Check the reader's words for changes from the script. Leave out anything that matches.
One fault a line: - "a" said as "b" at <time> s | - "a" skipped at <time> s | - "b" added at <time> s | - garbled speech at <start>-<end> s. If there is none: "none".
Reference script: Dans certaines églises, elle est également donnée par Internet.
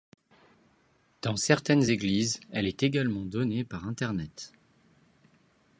none